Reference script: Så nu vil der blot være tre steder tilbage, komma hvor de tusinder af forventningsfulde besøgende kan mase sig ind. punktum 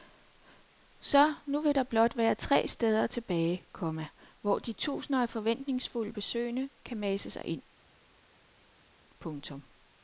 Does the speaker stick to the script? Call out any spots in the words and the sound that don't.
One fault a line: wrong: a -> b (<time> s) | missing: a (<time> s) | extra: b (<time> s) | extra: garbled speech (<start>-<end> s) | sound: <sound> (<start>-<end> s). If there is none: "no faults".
no faults